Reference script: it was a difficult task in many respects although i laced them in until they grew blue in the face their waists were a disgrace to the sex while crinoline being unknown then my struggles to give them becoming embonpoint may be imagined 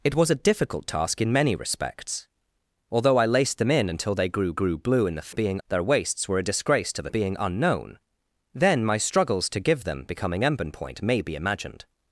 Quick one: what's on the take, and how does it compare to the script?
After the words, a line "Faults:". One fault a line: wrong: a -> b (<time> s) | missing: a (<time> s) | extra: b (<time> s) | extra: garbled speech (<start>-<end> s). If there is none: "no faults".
it was a difficult task in many respects although i laced them in until they grew grew blue in the being their waists were a disgrace to the being unknown then my struggles to give them becoming embonpoint may be imagined
Faults:
extra: grew (4.5 s)
wrong: face -> being (5.3 s)
missing: sex while crinoline (7.1 s)